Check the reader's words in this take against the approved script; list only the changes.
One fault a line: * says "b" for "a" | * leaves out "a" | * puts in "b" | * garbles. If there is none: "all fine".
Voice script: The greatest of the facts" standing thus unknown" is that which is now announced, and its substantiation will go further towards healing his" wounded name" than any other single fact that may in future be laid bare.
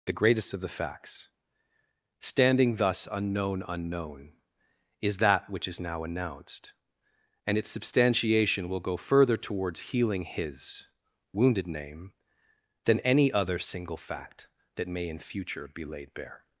* puts in "unknown"